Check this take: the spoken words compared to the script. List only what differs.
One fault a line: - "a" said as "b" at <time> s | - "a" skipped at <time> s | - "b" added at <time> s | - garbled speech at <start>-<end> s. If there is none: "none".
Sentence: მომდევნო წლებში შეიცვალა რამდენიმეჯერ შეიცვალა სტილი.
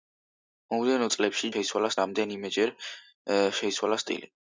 none